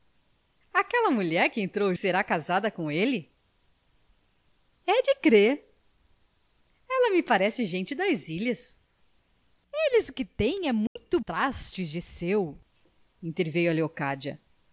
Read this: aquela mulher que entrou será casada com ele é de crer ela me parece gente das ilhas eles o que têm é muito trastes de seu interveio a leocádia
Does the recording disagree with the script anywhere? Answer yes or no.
no